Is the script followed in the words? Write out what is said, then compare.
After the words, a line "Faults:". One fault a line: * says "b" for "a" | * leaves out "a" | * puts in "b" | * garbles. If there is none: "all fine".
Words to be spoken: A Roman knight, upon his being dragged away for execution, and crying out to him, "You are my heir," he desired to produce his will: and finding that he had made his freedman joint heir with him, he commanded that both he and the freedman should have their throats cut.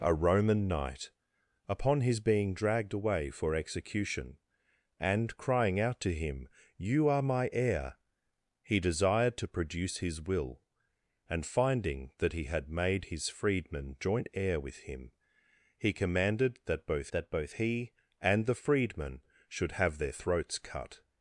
A Roman knight, upon his being dragged away for execution, and crying out to him, "You are my heir," he desired to produce his will: and finding that he had made his freedman joint heir with him, he commanded that both that both he and the freedman should have their throats cut.
Faults:
* puts in "that both"